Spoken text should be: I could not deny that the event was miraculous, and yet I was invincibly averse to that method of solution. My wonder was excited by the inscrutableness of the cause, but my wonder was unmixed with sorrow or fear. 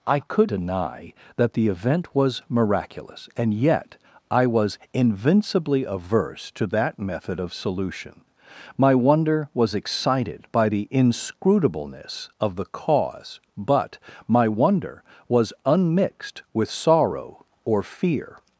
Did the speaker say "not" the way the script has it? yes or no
no